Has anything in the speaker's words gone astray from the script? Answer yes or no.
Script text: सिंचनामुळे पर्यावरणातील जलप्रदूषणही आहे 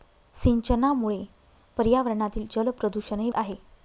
no